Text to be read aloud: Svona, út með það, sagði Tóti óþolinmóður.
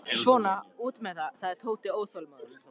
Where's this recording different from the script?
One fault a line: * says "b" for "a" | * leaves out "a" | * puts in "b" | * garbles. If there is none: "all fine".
all fine